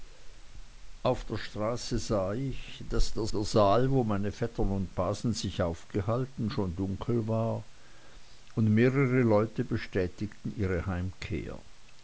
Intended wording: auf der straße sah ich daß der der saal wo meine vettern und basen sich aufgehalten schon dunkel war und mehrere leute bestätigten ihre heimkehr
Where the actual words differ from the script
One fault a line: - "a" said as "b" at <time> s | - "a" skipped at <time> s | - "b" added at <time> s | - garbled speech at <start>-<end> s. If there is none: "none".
none